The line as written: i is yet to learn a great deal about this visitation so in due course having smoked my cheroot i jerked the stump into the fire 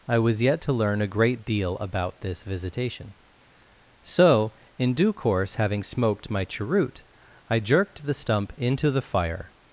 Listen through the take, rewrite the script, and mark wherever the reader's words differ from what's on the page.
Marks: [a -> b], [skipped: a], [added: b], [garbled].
i [is -> was] yet to learn a great deal about this visitation so in due course having smoked my cheroot i jerked the stump into the fire